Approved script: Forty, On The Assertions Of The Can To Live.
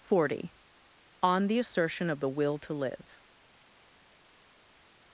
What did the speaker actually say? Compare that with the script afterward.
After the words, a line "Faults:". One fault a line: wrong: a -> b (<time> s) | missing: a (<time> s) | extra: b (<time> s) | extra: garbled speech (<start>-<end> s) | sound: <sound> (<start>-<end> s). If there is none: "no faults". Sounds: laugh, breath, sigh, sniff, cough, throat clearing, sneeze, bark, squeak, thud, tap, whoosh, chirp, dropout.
Forty, On The Assertion Of The Will To Live.
Faults:
wrong: Assertions -> Assertion (1.6 s)
wrong: Can -> Will (2.3 s)